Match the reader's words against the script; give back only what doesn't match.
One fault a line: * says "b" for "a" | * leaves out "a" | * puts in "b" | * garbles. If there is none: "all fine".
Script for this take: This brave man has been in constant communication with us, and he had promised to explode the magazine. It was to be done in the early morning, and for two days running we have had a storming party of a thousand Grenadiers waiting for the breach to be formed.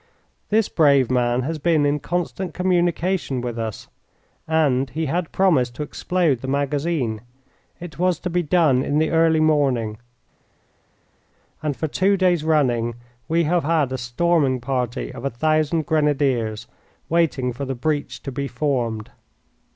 all fine